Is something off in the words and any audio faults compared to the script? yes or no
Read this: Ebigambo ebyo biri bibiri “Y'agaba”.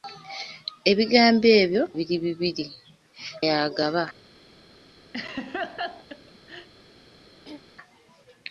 yes